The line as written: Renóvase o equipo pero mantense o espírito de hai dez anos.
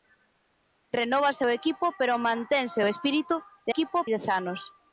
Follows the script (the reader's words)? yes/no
no